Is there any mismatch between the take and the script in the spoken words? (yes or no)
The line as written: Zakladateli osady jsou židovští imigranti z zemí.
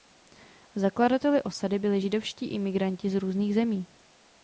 yes